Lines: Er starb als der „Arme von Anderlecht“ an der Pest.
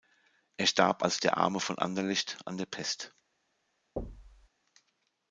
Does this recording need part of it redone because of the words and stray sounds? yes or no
yes